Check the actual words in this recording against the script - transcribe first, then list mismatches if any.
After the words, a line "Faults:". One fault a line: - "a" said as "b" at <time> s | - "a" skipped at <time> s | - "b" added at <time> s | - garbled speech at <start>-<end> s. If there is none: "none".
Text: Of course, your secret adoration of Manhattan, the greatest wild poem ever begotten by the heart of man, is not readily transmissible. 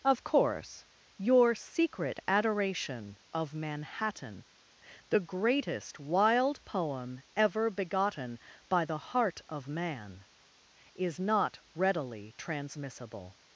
Of course, your secret adoration of Manhattan, the greatest wild poem ever begotten by the heart of man, is not readily transmissible.
Faults:
none